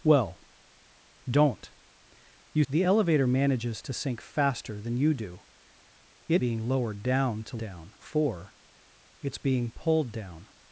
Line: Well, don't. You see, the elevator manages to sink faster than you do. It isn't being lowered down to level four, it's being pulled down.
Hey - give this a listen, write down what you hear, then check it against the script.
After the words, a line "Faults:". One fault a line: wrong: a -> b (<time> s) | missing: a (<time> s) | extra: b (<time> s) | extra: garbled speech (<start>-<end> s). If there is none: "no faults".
Well, don't. You the elevator manages to sink faster than you do. It being lowered down to down four, it's being pulled down.
Faults:
missing: see (2.6 s)
missing: isn't (6.4 s)
wrong: level -> down (7.6 s)